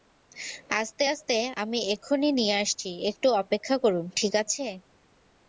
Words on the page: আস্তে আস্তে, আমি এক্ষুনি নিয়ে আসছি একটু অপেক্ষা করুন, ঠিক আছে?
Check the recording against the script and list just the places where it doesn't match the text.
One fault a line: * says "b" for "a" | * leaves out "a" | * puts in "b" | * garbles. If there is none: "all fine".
all fine